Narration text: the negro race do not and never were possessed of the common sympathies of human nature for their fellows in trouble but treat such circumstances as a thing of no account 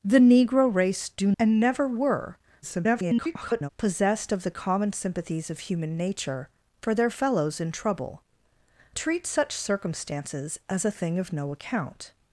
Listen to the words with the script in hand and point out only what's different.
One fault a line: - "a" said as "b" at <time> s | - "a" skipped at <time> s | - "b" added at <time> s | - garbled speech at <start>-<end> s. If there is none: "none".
- "not" skipped at 1.3 s
- garbled speech at 2.6-3.7 s
- "but" skipped at 8.2 s